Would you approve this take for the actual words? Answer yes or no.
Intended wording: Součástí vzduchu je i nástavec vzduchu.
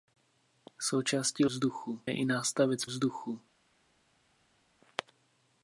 yes